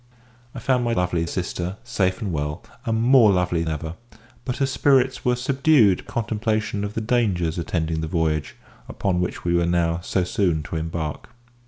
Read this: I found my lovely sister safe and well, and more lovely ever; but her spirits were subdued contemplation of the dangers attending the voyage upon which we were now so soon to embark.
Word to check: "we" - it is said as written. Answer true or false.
true